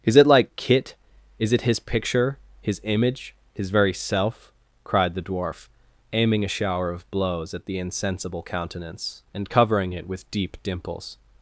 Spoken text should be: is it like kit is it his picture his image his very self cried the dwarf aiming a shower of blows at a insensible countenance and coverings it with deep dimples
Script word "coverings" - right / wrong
wrong